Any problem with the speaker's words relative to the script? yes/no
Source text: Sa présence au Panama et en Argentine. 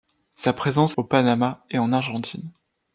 no